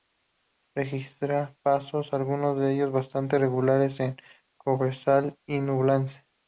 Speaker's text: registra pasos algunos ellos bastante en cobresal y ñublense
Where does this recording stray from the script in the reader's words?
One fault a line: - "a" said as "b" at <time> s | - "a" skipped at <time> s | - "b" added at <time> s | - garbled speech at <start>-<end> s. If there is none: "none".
- "de" added at 2.6 s
- "regulares" added at 3.4 s